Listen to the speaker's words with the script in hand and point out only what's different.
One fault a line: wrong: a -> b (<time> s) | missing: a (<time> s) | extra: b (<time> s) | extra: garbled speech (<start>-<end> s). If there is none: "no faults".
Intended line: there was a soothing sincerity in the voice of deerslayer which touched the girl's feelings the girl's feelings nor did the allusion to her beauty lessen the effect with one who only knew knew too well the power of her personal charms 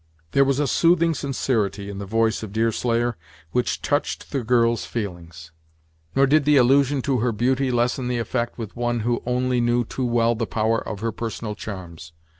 missing: the girl's feelings (5.5 s)
missing: knew (9.8 s)